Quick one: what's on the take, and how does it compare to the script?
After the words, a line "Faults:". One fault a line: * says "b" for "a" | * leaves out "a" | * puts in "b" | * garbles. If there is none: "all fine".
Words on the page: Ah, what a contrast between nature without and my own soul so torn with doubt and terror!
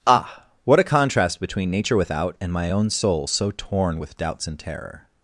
Ah, what a contrast between nature without and my own soul so torn with doubts and terror!
Faults:
* says "doubts" for "doubt"